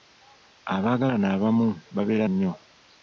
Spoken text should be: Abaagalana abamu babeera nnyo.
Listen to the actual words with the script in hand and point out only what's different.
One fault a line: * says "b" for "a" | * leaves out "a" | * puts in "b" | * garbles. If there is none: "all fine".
all fine